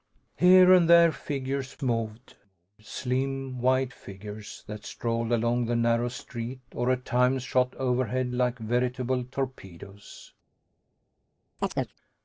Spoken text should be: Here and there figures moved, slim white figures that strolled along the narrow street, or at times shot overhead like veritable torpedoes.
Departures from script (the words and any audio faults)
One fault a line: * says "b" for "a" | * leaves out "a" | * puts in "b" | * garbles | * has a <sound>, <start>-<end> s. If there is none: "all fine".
* has a chirp, 11.6-11.9 s